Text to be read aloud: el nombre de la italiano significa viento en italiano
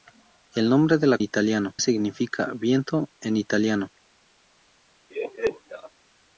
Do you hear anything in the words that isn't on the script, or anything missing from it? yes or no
no